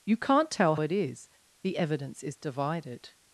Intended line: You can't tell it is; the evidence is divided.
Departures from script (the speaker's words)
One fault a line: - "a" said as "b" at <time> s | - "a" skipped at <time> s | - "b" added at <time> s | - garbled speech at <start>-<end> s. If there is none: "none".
none